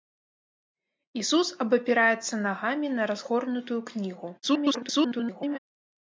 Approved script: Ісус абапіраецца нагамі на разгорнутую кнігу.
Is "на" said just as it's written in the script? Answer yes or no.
yes